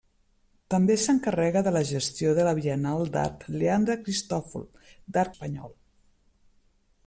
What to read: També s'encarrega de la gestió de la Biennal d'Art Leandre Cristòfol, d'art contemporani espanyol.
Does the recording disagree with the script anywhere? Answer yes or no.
yes